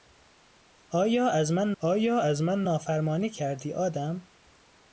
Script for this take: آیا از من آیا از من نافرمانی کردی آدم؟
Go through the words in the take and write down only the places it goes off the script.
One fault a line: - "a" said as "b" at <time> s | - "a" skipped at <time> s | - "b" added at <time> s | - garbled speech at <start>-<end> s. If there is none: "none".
none